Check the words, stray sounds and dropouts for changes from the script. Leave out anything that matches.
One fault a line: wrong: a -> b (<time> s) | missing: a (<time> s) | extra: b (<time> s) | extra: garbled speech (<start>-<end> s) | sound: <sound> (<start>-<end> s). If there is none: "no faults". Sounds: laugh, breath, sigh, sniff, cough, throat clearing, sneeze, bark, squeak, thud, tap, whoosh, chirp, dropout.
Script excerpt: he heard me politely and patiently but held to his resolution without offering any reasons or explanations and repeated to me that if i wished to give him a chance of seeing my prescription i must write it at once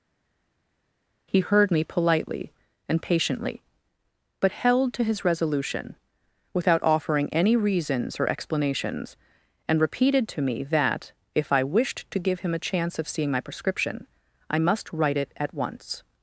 no faults